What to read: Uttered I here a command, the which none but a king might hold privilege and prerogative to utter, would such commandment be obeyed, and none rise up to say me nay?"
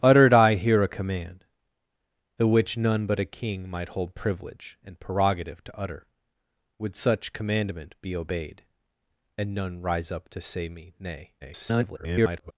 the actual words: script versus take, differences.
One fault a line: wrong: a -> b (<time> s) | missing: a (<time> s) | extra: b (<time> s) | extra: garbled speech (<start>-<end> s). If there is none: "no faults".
extra: garbled speech (11.4-12.5 s)